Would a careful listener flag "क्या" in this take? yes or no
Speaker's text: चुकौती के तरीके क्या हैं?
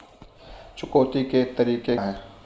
yes